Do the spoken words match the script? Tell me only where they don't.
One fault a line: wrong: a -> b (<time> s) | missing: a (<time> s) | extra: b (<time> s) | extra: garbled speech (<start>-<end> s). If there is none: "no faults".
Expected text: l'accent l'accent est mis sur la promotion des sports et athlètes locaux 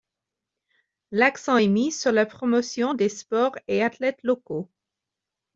missing: l'accent (1.6 s)